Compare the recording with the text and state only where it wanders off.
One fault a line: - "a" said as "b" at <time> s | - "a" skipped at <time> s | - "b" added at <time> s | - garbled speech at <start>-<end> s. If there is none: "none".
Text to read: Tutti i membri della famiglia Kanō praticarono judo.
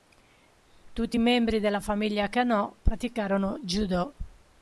none